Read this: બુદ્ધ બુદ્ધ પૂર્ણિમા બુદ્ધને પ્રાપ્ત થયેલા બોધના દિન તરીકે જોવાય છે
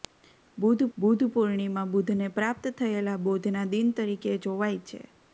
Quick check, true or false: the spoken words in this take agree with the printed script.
true